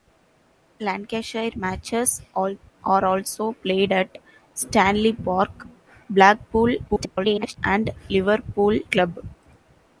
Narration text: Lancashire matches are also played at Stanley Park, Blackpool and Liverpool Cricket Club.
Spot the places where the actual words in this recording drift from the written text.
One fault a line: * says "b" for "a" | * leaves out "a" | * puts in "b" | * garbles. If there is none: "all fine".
* garbles
* leaves out "Cricket"